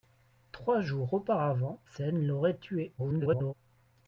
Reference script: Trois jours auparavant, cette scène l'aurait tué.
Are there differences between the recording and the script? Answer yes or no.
yes